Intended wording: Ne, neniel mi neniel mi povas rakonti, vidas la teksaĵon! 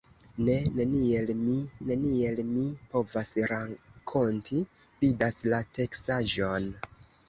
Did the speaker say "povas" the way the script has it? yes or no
yes